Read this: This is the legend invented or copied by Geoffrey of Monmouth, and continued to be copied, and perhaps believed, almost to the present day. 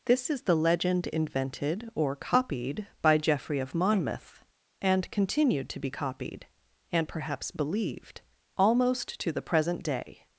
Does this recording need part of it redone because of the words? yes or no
no